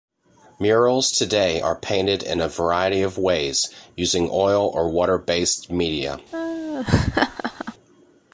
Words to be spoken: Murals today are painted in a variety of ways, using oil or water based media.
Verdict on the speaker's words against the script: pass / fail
pass